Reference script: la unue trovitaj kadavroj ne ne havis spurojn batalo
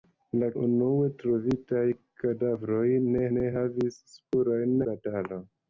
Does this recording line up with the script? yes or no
yes